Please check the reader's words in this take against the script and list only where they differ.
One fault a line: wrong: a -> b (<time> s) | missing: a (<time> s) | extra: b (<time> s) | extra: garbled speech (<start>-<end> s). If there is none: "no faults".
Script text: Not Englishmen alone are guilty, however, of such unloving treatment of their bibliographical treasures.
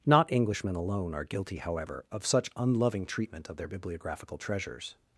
no faults